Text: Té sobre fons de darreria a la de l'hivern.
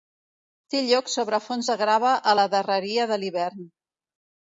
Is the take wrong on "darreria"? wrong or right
wrong